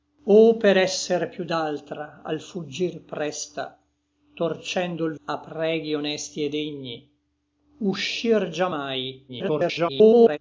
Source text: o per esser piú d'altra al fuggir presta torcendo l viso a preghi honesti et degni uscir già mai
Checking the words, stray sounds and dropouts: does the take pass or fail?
fail